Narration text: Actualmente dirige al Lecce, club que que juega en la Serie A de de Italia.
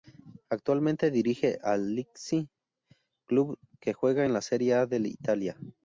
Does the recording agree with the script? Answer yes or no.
no